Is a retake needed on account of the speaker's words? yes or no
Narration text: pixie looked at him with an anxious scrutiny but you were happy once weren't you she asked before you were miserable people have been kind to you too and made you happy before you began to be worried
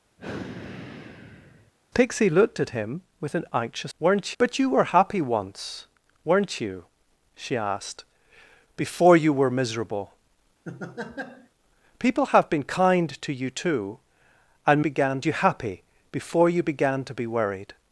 yes